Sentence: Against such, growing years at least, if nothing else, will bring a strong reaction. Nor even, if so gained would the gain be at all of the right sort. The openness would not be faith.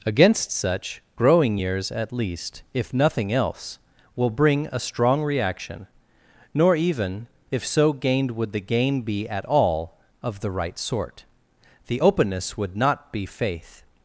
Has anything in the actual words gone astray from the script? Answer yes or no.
no